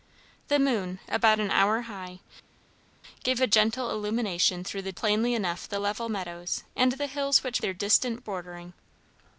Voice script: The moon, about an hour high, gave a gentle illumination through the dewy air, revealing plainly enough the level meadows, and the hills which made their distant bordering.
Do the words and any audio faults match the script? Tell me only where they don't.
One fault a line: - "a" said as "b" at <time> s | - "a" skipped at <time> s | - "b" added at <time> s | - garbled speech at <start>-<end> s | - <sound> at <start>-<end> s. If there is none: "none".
- "dewy air revealing" skipped at 4.9 s
- "made" skipped at 7.6 s